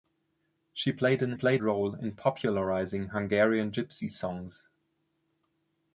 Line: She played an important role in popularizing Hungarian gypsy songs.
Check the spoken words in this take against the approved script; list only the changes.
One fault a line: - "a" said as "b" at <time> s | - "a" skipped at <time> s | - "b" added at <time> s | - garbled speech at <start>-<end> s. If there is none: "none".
- "important" said as "played" at 1.3 s